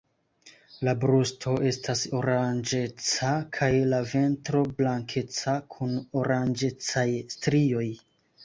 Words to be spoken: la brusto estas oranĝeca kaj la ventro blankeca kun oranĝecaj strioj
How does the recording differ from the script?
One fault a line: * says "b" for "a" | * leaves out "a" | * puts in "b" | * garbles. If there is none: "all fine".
all fine